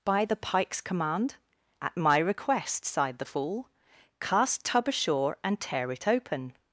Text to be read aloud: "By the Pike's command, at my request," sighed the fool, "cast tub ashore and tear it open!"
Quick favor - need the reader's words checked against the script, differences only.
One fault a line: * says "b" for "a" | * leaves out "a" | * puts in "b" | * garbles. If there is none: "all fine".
all fine